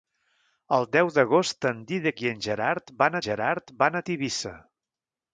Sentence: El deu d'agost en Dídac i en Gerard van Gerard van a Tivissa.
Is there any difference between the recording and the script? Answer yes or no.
no